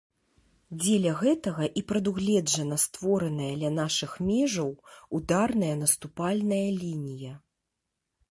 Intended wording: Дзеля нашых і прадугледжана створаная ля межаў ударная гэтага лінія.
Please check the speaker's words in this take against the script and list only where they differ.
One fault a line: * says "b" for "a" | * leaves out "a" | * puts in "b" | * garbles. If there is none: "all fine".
* says "гэтага" for "нашых"
* puts in "нашых"
* says "наступальная" for "гэтага"